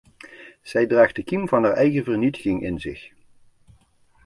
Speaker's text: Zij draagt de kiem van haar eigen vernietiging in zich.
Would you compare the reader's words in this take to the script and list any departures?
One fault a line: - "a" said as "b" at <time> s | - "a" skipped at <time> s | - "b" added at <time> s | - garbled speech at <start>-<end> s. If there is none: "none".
none